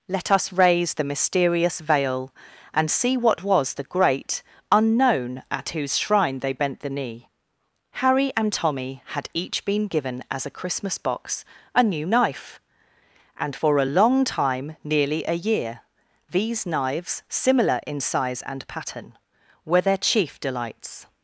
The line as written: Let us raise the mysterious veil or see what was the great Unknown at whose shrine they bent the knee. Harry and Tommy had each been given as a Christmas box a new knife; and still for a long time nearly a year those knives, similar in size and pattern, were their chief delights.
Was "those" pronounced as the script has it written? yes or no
no